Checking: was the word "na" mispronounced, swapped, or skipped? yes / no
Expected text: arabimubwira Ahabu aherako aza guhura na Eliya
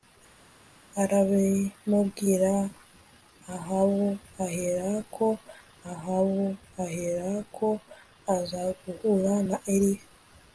no